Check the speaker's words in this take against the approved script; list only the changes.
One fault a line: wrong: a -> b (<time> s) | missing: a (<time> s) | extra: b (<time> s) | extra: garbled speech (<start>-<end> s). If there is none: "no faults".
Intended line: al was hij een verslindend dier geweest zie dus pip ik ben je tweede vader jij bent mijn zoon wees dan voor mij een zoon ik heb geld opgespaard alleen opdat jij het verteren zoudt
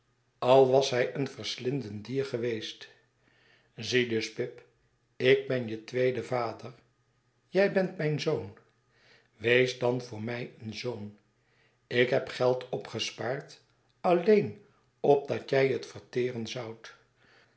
no faults